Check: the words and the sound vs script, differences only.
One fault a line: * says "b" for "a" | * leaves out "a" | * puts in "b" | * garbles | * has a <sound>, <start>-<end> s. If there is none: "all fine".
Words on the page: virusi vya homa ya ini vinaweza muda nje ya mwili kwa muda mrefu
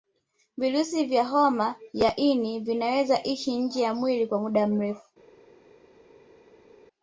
* says "ishi" for "muda"